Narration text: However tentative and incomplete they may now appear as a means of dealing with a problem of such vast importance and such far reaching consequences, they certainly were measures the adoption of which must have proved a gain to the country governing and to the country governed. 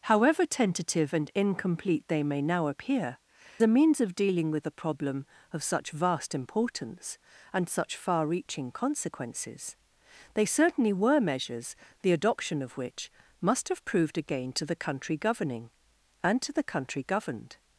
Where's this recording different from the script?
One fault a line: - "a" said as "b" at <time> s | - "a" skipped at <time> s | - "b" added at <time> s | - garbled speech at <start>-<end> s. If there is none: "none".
- "as" skipped at 3.2 s